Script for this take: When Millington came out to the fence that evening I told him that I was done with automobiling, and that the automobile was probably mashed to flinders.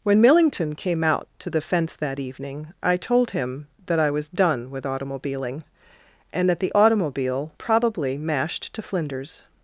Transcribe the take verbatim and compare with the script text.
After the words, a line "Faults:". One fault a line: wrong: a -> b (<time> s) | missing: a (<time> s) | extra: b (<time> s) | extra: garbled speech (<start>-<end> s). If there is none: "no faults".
When Millington came out to the fence that evening I told him that I was done with automobiling, and that the automobile probably mashed to flinders.
Faults:
missing: was (7.5 s)